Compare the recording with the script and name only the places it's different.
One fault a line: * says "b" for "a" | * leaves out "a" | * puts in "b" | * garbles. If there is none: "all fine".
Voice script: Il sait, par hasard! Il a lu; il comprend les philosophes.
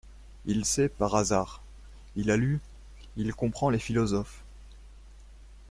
all fine